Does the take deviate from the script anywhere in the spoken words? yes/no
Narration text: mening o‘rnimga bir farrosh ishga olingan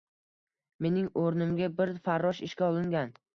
no